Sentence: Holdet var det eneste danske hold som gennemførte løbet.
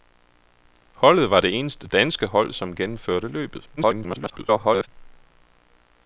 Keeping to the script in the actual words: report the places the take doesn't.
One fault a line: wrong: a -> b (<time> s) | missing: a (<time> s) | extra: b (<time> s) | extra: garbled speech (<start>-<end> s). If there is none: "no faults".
extra: garbled speech (3.8-4.9 s)